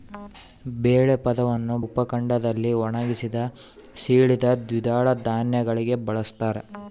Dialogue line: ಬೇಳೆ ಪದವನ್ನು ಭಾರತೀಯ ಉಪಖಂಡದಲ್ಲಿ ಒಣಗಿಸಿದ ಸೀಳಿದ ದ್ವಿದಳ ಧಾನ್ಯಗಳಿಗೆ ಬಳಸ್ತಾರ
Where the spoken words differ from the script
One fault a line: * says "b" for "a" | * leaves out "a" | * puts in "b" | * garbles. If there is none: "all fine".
* leaves out "ಭಾರತೀಯ"